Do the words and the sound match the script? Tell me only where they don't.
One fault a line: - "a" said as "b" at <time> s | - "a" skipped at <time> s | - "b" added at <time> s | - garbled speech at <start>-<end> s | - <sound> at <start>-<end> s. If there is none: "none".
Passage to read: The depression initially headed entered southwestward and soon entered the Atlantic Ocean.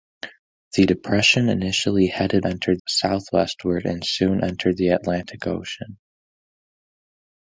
none